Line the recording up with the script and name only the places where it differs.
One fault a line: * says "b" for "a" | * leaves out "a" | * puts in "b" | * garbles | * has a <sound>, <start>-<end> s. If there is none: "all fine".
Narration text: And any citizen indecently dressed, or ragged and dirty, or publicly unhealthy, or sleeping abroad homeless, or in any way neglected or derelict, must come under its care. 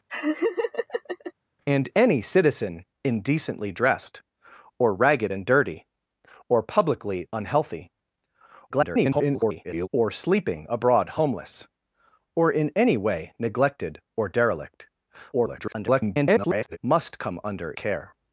* has a laugh, 0.1-1.3 s
* garbles
* garbles
* leaves out "its"